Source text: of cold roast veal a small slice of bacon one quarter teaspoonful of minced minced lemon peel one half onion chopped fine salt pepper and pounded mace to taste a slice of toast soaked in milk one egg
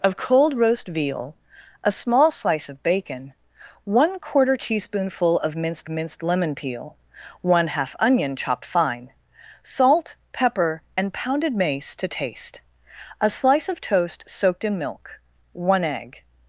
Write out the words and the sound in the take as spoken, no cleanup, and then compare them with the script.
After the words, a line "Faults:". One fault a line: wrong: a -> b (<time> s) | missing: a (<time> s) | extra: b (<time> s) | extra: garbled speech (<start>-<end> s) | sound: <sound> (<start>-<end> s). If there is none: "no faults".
of cold roast veal a small slice of bacon one quarter teaspoonful of minced minced lemon peel one half onion chopped fine salt pepper and pounded mace to taste a slice of toast soaked in milk one egg
Faults:
no faults